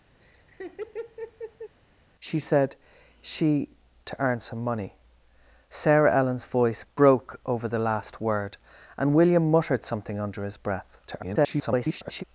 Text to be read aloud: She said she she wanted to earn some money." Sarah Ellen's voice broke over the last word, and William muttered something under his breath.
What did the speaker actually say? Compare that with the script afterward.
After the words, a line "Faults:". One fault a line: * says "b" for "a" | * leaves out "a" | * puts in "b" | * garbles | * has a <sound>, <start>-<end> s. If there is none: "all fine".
She said she to earn some money." Sarah Ellen's voice broke over the last word, and William muttered something under his breath. [garbled]
Faults:
* has a laugh, 0.2-1.8 s
* leaves out "she wanted"
* garbles